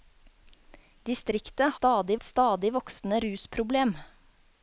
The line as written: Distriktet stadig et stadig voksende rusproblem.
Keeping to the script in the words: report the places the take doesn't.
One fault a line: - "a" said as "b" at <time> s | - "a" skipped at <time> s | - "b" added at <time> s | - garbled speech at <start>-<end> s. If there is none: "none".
none